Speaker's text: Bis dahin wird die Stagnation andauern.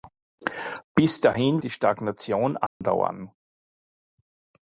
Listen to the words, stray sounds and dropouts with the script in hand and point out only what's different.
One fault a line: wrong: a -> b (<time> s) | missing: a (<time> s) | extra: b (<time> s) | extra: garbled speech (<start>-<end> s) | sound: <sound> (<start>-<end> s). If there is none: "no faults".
missing: wird (1.6 s)
sound: dropout (2.7-2.8 s)